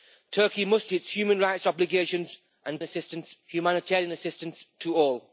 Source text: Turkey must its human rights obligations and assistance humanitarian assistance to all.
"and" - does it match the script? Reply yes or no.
yes